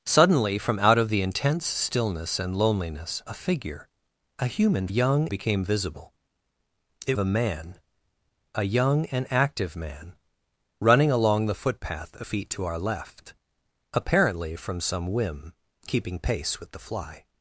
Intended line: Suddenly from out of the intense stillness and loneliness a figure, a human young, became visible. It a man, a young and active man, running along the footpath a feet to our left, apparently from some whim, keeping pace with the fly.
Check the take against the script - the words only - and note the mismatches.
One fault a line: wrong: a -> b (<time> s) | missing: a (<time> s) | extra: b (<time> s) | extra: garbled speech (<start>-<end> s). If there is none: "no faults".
no faults